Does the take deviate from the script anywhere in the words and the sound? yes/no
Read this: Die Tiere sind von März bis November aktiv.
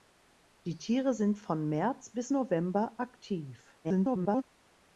yes